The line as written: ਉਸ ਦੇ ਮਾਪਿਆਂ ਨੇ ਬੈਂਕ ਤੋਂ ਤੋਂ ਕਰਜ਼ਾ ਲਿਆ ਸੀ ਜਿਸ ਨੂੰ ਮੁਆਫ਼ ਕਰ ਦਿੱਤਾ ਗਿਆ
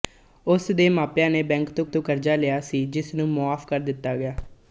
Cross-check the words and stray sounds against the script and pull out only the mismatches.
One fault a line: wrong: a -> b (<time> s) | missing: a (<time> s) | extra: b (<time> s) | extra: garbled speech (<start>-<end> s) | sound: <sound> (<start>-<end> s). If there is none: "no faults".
no faults